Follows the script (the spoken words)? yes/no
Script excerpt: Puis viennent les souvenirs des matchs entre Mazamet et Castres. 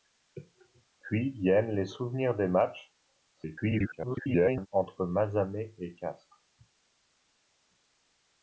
no